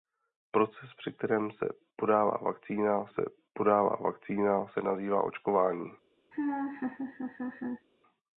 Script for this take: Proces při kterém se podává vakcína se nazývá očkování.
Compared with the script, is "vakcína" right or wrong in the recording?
right